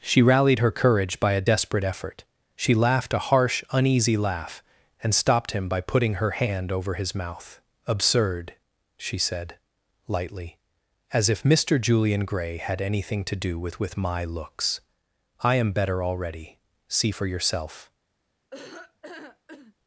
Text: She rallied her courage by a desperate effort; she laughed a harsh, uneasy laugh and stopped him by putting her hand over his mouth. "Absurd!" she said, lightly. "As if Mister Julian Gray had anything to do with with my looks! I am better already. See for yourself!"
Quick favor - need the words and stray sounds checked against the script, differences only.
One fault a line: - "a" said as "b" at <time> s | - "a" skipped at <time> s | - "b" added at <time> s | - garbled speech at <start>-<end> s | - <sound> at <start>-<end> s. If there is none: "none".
- laugh at 18.5-19.7 s